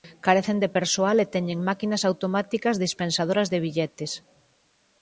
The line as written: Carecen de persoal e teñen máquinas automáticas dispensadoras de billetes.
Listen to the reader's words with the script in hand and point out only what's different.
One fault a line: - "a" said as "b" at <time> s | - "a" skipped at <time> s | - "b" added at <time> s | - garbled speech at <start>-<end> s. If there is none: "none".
none